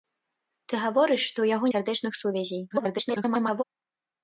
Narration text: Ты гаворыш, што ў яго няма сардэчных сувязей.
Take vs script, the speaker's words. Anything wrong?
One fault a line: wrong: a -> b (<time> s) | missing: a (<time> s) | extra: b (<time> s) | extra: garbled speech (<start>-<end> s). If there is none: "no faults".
missing: няма (1.6 s)
extra: garbled speech (2.7-3.6 s)